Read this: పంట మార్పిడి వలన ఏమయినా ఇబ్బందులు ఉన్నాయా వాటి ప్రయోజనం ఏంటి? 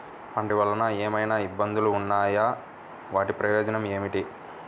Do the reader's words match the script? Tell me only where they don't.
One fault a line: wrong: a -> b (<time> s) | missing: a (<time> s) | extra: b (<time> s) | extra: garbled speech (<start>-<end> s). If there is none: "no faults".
missing: మార్పిడి (0.5 s)